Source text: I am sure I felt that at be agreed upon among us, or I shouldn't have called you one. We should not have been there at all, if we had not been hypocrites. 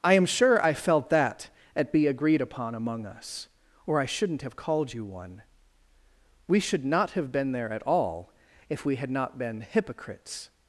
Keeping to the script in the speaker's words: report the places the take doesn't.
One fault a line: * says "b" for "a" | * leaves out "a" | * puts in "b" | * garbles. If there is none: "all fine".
all fine